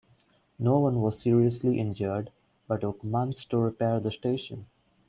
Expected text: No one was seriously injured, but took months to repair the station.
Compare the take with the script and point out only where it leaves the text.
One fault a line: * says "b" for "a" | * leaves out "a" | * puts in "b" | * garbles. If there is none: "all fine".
all fine